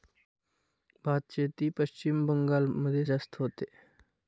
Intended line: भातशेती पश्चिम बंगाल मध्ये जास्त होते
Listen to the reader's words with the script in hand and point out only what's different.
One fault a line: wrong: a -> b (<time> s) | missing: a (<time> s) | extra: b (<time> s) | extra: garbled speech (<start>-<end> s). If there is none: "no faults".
no faults